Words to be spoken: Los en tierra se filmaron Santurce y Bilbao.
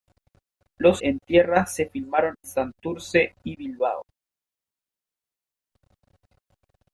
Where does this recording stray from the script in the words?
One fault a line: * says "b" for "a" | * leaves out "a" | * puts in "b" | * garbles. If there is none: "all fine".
all fine